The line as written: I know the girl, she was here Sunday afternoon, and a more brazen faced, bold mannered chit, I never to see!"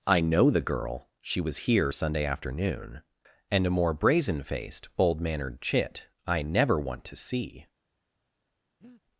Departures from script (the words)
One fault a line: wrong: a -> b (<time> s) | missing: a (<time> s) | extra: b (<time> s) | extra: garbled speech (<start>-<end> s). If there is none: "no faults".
extra: want (6.8 s)